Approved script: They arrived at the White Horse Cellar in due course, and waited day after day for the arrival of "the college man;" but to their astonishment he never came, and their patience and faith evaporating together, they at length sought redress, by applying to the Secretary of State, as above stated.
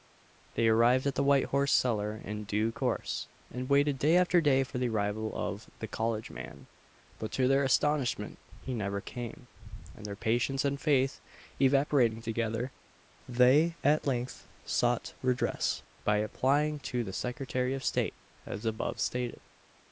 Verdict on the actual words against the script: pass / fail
pass